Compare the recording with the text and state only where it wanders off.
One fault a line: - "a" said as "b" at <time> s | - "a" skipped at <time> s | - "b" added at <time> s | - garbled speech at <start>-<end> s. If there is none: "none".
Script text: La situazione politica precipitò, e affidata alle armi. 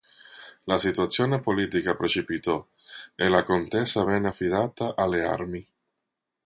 - "la contesa venne" added at 3.3 s